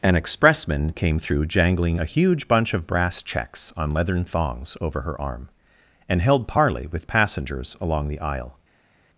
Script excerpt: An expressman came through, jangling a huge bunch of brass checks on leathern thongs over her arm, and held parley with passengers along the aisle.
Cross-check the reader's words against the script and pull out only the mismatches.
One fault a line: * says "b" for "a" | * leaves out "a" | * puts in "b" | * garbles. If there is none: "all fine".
all fine